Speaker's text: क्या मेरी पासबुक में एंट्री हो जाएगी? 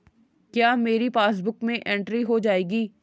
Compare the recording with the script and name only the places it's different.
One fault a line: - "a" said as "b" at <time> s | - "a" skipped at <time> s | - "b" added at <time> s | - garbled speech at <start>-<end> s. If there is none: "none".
none